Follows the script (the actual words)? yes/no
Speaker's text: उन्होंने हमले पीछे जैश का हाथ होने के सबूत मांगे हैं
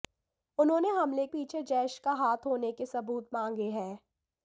yes